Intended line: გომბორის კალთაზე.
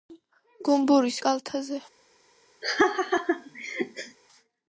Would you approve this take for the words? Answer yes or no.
yes